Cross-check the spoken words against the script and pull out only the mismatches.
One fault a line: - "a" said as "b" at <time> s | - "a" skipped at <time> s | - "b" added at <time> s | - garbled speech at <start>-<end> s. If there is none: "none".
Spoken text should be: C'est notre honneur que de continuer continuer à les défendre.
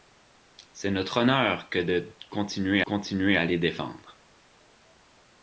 none